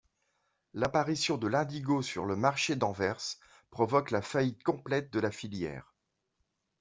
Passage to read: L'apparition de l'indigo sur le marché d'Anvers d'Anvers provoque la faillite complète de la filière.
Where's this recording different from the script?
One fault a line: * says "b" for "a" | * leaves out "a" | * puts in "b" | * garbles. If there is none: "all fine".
* leaves out "d'Anvers"